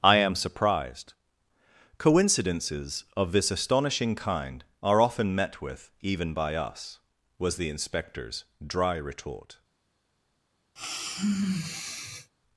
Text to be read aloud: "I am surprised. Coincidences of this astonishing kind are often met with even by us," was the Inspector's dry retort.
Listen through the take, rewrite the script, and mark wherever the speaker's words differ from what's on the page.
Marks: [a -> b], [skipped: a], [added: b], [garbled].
"I am surprised. Coincidences of this astonishing kind are often met with even by us," was the Inspector's dry retort.